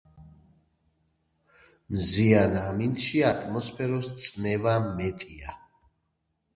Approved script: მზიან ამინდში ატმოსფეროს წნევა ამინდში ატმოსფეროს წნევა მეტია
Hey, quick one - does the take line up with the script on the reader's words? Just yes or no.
no